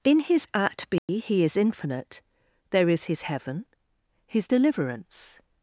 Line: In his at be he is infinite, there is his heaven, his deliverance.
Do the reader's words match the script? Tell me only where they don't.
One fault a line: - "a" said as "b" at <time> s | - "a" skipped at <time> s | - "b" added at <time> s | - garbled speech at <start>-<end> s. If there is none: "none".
none